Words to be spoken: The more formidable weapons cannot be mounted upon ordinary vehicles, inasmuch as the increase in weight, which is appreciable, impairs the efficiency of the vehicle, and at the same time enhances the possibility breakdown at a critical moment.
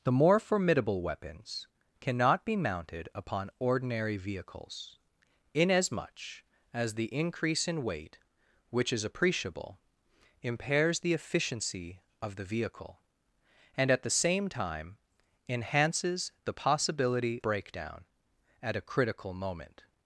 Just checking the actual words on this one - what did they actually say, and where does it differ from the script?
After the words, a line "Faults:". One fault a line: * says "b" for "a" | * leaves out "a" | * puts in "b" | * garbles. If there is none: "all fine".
The more formidable weapons cannot be mounted upon ordinary vehicles, inasmuch as the increase in weight, which is appreciable, impairs the efficiency of the vehicle, and at the same time enhances the possibility breakdown at a critical moment.
Faults:
all fine